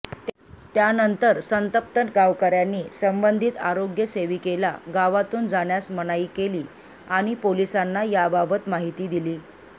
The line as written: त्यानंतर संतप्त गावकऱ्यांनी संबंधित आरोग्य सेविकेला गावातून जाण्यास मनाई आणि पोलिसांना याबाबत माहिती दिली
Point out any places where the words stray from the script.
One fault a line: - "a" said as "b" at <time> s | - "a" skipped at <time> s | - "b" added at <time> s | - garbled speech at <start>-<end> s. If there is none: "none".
- "केली" added at 6.4 s